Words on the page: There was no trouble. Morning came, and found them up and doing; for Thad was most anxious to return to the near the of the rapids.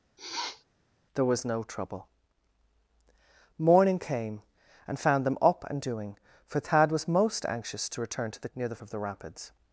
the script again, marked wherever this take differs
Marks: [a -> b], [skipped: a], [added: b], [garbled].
There was no trouble. Morning came, and found them up and doing; for Thad was most anxious to return to the near the of the rapids.